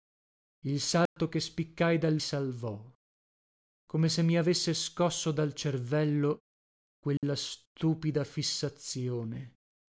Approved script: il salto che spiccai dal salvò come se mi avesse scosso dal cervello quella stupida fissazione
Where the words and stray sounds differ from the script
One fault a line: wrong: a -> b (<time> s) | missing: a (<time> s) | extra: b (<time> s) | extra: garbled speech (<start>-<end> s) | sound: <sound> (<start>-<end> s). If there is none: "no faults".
sound: dropout (1.1-1.2 s)
sound: dropout (7.2-7.2 s)